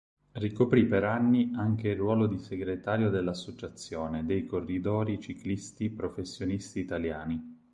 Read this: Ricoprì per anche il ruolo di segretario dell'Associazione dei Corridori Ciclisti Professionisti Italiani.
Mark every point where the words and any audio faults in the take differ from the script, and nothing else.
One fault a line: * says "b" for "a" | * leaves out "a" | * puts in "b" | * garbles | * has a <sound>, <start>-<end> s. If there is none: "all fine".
* puts in "anni"